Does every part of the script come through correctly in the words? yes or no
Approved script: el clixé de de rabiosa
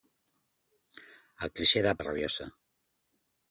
yes